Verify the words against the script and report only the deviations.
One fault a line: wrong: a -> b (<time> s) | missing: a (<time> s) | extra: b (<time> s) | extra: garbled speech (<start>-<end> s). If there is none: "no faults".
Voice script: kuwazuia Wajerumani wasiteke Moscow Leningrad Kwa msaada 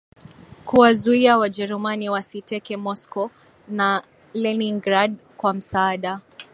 extra: na (3.7 s)